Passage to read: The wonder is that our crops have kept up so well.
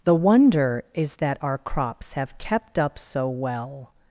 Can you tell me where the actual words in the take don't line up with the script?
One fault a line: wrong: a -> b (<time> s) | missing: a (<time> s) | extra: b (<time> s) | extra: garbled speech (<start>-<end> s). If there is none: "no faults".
no faults